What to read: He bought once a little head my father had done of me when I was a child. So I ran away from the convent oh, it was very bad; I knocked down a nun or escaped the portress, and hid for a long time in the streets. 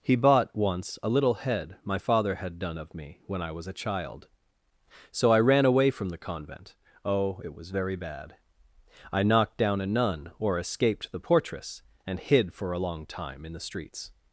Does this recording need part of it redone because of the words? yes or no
no